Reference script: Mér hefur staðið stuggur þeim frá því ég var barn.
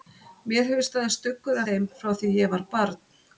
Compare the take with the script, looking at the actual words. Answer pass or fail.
pass